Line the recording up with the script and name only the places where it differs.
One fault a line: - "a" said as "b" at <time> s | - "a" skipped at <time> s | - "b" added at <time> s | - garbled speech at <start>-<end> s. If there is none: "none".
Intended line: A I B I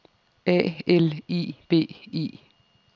- "L" added at 0.9 s